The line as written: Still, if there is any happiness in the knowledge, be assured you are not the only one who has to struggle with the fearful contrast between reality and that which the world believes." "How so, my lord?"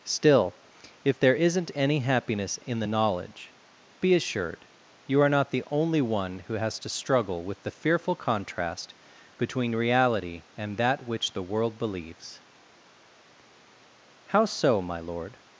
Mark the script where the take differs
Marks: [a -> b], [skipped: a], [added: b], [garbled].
Still, if there [is -> isn't] any happiness in the knowledge, be assured you are not the only one who has to struggle with the fearful contrast between reality and that which the world believes." "How so, my lord?"